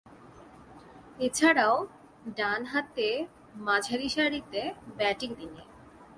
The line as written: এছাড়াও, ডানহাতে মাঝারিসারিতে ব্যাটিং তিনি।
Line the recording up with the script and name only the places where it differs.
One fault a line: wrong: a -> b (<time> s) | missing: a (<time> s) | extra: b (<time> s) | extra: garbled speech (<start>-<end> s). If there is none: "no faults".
no faults